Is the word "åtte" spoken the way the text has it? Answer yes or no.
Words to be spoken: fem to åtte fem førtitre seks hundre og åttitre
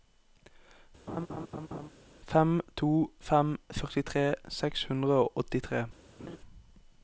no